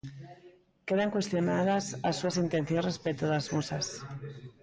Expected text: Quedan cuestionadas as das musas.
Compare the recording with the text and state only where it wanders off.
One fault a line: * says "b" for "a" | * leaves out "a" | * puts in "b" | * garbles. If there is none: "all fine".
* puts in "súas intencións respecto"